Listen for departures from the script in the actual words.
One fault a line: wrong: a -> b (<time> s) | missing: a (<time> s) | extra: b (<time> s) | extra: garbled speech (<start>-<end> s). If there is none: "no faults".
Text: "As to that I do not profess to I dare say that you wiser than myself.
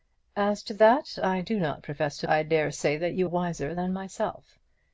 no faults